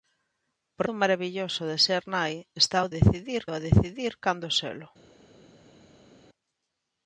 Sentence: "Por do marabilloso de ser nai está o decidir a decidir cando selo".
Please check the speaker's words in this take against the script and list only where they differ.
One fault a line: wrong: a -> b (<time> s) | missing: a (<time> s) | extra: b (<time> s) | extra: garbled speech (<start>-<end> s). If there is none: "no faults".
no faults